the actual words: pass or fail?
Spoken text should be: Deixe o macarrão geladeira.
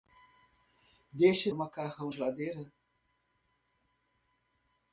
pass